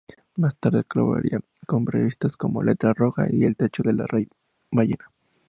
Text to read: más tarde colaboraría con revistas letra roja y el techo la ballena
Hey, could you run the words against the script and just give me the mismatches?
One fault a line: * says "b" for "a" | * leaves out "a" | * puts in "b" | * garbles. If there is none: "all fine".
* puts in "como"
* puts in "de"